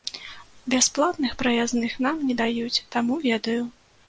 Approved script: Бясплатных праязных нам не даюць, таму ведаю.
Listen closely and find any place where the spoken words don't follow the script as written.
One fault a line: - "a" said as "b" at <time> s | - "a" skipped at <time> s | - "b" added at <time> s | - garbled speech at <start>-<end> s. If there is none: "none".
none